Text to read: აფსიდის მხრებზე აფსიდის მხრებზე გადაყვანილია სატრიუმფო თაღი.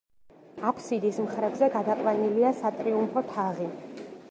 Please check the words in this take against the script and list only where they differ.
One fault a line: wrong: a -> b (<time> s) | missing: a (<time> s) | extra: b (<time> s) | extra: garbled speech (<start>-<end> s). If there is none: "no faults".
missing: აფსიდის მხრებზე (1.7 s)